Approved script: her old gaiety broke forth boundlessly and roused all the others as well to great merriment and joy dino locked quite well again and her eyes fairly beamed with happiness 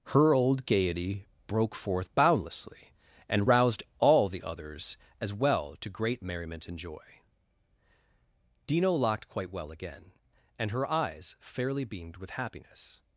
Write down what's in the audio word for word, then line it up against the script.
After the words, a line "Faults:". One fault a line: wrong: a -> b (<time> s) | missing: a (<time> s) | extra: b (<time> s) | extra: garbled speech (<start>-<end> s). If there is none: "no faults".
her old gaiety broke forth boundlessly and roused all the others as well to great merriment and joy dino locked quite well again and her eyes fairly beamed with happiness
Faults:
no faults